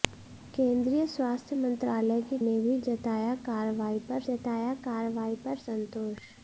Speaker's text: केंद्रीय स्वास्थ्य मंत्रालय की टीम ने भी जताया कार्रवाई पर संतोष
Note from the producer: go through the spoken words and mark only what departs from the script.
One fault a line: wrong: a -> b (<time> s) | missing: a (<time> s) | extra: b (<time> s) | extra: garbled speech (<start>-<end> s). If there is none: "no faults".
missing: टीम (2.4 s)
extra: जताया कार्रवाई पर (4.2 s)